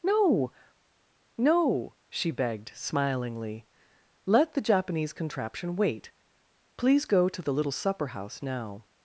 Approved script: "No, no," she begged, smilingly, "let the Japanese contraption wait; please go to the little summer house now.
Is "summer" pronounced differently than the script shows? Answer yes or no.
yes